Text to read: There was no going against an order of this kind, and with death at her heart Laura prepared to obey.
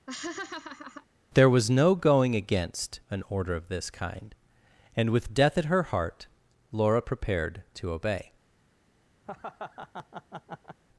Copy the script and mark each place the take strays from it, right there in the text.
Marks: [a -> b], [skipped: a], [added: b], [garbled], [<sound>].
[laugh] There was no going against an order of this kind, and with death at her heart Laura prepared to obey. [laugh]